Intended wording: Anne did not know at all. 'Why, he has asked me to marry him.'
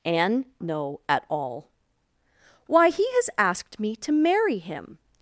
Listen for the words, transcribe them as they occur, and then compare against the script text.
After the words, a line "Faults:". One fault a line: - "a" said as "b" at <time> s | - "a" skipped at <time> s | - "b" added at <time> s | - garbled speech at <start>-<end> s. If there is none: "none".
Anne know at all. 'Why, he has asked me to marry him.'
Faults:
- "did not" skipped at 0.5 s